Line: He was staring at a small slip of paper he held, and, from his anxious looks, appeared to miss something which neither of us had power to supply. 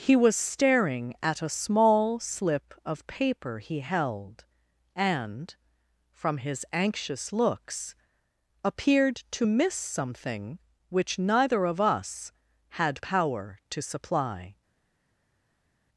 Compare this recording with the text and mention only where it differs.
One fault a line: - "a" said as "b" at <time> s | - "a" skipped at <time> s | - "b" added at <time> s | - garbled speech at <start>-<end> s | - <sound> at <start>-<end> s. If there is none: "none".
none